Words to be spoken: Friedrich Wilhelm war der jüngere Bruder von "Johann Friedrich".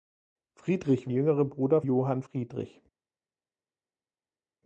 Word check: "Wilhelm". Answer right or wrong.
wrong